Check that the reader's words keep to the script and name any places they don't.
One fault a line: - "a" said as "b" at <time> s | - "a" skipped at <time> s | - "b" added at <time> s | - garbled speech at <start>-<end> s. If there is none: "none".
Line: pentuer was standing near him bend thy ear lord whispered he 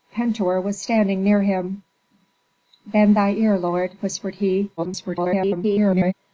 - garbled speech at 4.8-6.1 s